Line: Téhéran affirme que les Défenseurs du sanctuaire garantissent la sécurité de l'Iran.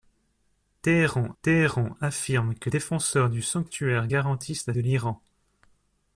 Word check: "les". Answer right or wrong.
wrong